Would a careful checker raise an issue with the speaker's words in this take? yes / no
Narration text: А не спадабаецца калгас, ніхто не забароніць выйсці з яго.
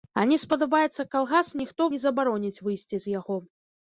no